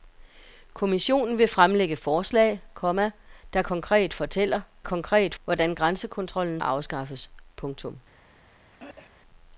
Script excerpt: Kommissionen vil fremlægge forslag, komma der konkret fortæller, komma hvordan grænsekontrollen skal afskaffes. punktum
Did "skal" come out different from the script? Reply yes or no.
yes